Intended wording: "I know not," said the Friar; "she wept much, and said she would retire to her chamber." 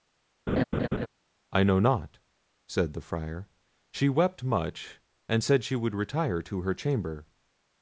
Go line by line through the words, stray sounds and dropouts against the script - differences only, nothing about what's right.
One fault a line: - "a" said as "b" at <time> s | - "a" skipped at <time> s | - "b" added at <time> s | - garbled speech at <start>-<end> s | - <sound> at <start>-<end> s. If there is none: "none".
- laugh at 0.5-1.1 s